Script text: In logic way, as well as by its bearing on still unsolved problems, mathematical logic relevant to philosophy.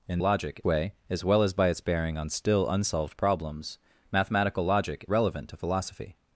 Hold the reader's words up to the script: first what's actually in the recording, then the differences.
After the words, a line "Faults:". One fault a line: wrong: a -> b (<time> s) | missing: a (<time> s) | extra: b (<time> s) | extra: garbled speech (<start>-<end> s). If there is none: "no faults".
In logic way, as well as by its bearing on still unsolved problems, mathematical logic relevant to philosophy.
Faults:
no faults